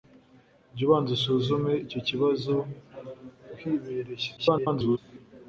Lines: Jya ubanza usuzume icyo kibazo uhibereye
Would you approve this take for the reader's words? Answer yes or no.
no